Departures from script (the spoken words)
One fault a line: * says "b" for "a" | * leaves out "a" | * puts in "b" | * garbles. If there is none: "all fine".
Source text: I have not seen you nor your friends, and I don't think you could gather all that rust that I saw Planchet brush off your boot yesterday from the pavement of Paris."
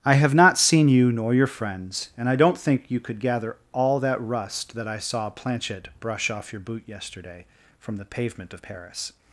all fine